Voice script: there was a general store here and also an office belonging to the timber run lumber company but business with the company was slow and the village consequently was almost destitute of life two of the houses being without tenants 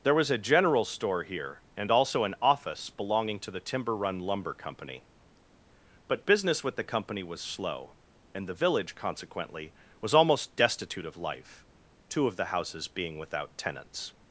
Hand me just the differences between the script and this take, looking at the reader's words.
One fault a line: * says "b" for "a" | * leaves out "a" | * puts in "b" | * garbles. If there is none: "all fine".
all fine